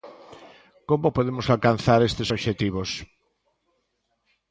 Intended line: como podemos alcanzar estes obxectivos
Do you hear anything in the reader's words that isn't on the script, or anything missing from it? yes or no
no